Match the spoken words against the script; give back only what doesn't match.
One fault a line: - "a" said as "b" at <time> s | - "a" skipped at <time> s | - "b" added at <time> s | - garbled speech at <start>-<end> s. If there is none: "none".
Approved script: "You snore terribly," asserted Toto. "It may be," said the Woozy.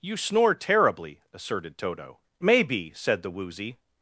- "It" skipped at 2.2 s